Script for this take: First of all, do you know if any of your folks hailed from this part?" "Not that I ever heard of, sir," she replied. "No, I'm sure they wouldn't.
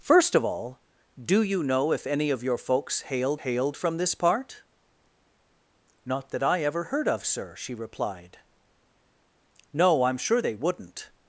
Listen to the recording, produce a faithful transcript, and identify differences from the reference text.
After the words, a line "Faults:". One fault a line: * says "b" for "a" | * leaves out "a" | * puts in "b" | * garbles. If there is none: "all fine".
First of all, do you know if any of your folks hailed hailed from this part?" "Not that I ever heard of, sir," she replied. "No, I'm sure they wouldn't.
Faults:
* puts in "hailed"